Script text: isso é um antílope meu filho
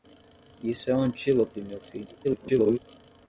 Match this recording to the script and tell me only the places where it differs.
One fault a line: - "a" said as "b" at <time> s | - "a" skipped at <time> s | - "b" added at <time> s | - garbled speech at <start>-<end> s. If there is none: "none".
- garbled speech at 2.2-2.8 s